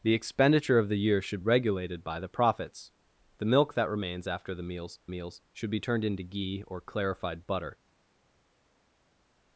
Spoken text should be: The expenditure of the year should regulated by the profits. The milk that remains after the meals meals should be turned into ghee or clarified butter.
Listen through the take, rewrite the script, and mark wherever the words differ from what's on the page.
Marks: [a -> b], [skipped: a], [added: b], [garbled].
The expenditure of the year should regulated by the profits. The milk that remains after the meals meals should be turned into ghee or clarified butter.